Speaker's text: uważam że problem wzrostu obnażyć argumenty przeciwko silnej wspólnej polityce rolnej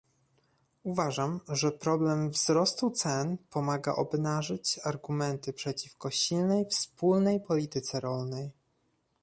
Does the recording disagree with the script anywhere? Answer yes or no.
yes